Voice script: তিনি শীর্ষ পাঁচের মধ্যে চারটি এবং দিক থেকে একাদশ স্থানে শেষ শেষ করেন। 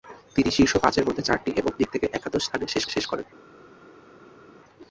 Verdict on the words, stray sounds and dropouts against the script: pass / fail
pass